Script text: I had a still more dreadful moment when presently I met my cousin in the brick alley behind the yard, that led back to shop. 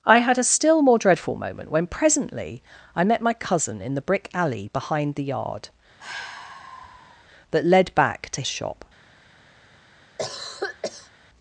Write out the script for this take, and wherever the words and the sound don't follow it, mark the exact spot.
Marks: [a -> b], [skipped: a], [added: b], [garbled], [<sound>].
I had a still more dreadful moment when presently I met my cousin in the brick alley behind the yard, [sigh] that led back to shop. [cough]